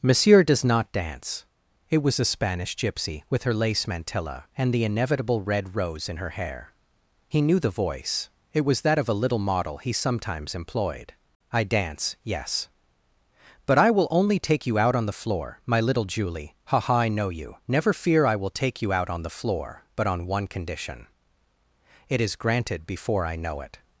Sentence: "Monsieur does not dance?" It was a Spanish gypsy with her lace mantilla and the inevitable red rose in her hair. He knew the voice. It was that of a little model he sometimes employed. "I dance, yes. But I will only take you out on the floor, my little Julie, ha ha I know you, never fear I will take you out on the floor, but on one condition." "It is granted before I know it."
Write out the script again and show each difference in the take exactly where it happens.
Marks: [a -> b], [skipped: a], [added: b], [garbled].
"Monsieur does not dance?" It was a Spanish gypsy with her lace mantilla and the inevitable red rose in her hair. He knew the voice. It was that of a little model he sometimes employed. "I dance, yes. But I will only take you out on the floor, my little Julie, ha ha I know you, never fear I will take you out on the floor, but on one condition." "It is granted before I know it."